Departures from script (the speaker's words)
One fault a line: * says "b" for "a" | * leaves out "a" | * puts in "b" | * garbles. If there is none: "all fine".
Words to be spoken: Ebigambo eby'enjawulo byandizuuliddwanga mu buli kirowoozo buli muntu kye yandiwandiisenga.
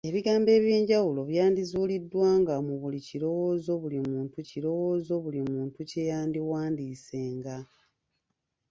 * puts in "kirowoozo buli muntu"